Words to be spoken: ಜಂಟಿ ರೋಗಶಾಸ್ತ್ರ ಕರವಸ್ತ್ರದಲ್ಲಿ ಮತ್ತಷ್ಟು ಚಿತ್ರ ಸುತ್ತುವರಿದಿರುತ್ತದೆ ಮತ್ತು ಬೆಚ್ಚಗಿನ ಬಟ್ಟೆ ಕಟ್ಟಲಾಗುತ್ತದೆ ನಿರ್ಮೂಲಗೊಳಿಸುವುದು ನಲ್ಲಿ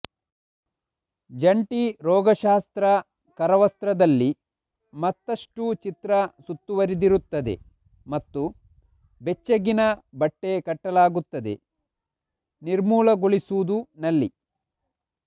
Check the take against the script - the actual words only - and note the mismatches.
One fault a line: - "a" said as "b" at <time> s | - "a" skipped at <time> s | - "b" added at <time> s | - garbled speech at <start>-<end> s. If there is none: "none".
none